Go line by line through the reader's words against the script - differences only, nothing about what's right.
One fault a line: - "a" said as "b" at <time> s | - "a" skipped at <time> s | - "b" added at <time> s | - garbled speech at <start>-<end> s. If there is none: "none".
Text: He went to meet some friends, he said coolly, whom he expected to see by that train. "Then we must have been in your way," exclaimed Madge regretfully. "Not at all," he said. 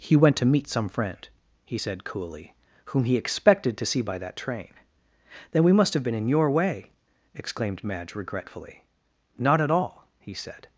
- "friends" said as "friend" at 0.9 s